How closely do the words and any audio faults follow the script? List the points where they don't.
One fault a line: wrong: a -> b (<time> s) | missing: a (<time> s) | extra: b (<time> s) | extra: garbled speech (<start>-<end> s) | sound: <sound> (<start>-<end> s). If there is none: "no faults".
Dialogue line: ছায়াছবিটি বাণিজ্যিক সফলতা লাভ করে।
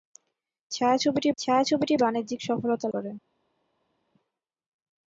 extra: ছায়াছবিটি (1.4 s)
missing: লাভ (2.9 s)